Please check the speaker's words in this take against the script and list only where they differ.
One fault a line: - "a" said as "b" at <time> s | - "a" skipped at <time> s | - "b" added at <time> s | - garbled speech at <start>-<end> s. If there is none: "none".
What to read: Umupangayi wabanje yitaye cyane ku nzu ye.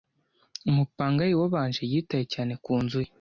none